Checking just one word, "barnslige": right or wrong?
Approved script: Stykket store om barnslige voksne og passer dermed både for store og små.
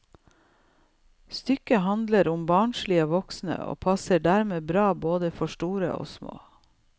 right